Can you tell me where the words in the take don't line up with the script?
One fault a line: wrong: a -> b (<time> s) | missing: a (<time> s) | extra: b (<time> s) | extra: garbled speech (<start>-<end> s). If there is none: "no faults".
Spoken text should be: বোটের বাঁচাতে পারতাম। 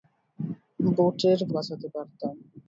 no faults